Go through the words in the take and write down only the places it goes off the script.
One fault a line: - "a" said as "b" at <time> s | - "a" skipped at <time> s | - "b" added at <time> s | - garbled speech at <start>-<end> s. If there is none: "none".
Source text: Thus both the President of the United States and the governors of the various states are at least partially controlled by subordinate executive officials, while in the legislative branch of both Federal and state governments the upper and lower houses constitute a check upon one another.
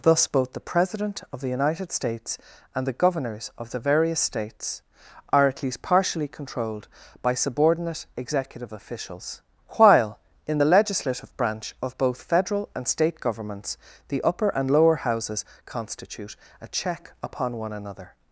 none